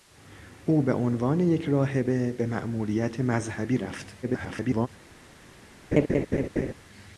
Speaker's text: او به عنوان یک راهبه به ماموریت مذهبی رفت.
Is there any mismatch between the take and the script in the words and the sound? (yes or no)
yes